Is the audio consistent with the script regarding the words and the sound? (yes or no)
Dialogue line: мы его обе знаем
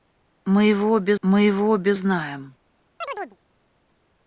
no